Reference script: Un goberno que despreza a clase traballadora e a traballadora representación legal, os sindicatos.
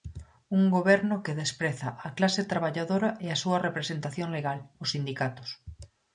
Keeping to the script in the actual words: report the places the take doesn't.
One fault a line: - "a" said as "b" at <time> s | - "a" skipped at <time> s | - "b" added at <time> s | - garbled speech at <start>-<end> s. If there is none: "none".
- "traballadora" said as "súa" at 3.4 s